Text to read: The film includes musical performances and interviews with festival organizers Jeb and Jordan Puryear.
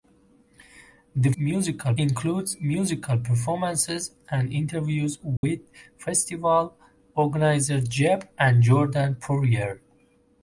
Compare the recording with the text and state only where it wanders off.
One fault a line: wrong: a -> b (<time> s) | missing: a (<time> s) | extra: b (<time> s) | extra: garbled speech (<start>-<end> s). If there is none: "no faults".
wrong: film -> musical (1.4 s)